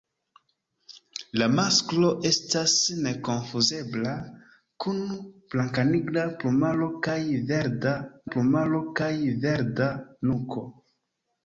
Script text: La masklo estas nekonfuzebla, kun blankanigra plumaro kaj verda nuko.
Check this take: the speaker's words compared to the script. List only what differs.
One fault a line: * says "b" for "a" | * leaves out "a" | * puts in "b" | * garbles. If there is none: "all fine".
* puts in "plumaro kaj verda"